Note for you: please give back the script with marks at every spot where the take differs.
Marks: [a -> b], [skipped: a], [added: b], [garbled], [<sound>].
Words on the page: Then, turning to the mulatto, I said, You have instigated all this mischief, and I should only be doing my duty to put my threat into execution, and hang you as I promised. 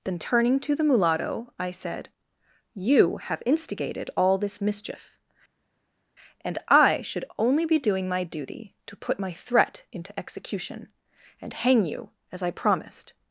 Then, turning to the mulatto, I said, You have instigated all this mischief, and I should only be doing my duty to put my threat into execution, and hang you as I promised.